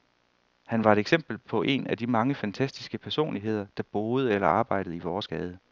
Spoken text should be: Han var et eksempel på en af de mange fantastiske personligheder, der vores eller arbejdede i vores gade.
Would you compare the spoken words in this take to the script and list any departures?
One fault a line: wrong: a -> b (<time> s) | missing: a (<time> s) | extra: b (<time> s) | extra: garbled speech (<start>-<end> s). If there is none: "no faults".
wrong: vores -> boede (3.9 s)